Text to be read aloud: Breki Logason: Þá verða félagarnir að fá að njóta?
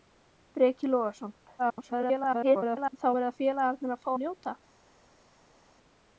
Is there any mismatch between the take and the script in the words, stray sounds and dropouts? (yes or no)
yes